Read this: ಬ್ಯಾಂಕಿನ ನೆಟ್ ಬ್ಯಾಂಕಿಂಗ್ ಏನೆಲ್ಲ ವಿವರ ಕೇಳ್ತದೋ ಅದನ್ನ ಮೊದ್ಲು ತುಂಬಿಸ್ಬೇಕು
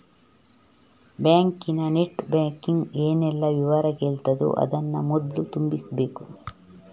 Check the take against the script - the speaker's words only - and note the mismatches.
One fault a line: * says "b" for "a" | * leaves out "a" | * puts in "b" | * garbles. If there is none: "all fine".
all fine